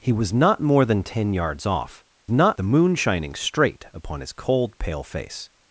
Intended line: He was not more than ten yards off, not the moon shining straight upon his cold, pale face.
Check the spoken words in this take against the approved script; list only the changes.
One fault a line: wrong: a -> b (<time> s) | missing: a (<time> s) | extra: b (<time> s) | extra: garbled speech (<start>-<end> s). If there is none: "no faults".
no faults